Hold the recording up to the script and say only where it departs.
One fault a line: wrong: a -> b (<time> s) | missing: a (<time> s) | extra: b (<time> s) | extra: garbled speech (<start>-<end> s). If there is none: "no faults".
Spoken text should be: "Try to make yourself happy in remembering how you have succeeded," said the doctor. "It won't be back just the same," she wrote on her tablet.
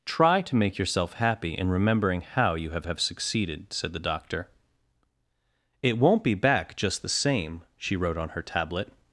extra: have (2.8 s)